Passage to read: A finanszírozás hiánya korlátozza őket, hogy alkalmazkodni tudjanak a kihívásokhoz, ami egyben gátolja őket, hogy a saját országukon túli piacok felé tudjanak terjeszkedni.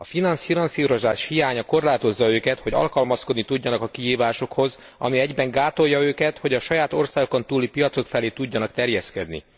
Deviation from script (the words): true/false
false